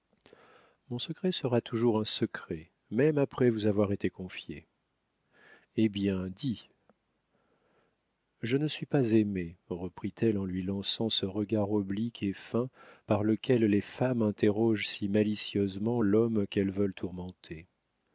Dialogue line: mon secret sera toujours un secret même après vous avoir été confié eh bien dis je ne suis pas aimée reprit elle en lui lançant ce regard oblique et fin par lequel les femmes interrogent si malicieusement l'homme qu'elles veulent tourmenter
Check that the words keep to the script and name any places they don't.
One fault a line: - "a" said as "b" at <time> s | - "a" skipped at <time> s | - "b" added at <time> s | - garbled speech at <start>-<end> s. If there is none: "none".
none